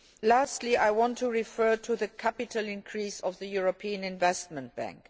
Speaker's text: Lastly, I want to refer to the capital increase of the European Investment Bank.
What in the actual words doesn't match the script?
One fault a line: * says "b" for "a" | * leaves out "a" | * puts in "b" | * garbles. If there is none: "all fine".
all fine